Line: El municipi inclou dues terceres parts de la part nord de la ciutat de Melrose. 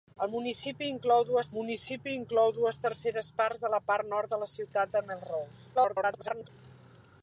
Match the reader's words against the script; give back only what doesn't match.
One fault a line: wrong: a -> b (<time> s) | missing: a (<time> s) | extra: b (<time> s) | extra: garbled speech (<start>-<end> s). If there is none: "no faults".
extra: municipi inclou dues (1.6 s)
extra: garbled speech (5.7-6.5 s)